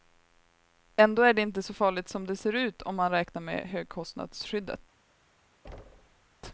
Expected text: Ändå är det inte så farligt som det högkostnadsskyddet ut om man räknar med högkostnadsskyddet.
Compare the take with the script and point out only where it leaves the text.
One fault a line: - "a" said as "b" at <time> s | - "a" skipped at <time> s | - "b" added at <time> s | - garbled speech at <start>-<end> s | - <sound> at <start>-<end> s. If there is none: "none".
- "högkostnadsskyddet" said as "ser" at 2.4 s
- thud at 5.6-6.4 s